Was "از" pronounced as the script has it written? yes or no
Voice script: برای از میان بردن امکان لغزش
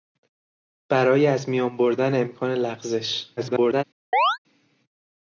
yes